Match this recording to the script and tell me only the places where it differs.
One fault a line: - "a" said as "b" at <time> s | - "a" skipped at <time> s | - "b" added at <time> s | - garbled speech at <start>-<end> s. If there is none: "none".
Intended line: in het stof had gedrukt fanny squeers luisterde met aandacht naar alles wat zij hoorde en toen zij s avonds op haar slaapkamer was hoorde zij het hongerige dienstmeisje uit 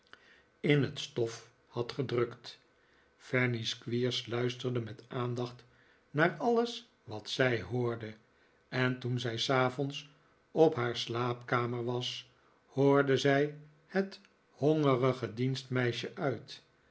none